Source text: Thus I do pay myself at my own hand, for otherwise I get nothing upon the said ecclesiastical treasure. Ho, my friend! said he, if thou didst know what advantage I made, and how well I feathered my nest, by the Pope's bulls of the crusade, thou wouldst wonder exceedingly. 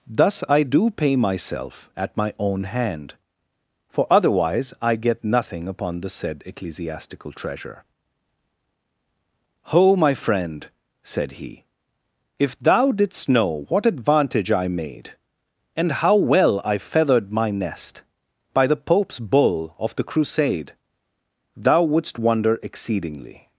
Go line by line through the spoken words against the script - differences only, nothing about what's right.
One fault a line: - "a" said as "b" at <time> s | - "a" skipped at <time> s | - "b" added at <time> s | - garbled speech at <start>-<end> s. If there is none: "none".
- "bulls" said as "bull" at 19.2 s